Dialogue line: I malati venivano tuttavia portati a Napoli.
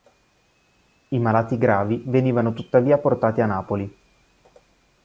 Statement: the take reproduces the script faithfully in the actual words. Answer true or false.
false